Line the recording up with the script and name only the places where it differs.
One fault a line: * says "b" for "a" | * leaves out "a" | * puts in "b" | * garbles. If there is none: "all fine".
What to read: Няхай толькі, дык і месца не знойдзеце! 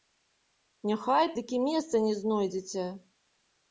* leaves out "толькі"